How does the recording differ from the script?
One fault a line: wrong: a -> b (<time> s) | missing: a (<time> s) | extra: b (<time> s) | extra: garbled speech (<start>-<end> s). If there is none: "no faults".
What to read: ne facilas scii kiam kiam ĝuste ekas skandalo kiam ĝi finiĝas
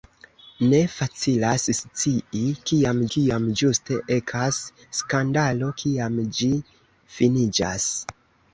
no faults